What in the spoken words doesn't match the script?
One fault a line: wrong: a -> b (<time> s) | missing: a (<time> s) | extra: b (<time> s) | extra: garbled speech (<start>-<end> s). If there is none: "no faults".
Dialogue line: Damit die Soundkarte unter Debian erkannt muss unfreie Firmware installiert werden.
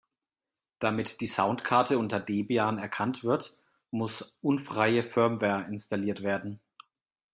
extra: wird (3.2 s)